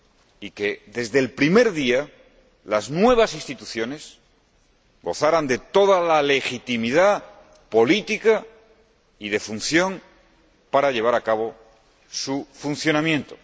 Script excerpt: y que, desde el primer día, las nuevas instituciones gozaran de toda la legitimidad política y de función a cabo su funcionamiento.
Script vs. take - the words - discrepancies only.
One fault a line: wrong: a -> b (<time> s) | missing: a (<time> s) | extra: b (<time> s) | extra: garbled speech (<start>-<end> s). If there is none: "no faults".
extra: para llevar (10.7 s)